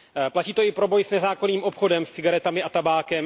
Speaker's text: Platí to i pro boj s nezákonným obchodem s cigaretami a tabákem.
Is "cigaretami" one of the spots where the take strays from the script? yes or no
no